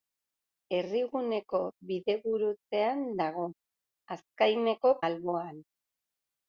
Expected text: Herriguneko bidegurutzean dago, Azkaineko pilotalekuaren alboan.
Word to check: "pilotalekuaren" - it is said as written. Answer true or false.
false